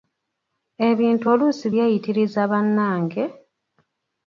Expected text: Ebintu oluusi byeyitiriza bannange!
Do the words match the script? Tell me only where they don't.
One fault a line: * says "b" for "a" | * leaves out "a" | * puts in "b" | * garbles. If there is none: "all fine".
all fine